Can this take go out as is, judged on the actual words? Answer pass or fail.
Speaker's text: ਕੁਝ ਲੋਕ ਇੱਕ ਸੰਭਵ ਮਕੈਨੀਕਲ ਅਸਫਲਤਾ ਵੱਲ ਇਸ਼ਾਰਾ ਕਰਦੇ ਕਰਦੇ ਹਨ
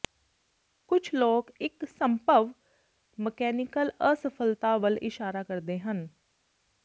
fail